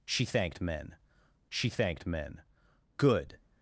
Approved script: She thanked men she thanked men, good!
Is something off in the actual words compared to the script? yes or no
no